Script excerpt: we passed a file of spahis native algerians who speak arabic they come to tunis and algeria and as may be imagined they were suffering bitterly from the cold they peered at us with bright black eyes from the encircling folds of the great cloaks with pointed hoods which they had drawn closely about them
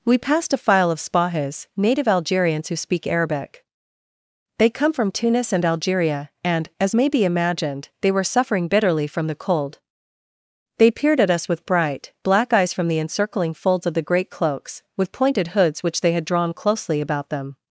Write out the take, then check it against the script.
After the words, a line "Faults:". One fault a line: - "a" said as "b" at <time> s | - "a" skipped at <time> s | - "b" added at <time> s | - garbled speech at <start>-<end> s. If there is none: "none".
we passed a file of spahis native algerians who speak arabic they come from tunis and algeria and as may be imagined they were suffering bitterly from the cold they peered at us with bright black eyes from the encircling folds of the great cloaks with pointed hoods which they had drawn closely about them
Faults:
- "to" said as "from" at 4.9 s